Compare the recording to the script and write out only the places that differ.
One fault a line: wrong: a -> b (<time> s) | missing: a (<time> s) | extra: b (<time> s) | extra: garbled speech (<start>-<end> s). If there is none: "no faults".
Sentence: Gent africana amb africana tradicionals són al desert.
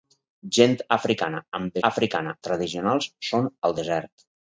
no faults